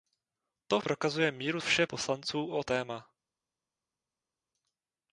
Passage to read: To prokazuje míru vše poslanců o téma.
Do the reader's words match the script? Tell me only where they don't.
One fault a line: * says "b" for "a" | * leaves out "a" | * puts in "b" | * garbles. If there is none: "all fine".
all fine